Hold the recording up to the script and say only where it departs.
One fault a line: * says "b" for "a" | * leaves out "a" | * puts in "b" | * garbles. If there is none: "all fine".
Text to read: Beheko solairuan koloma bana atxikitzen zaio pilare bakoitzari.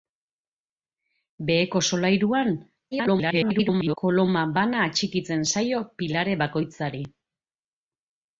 * garbles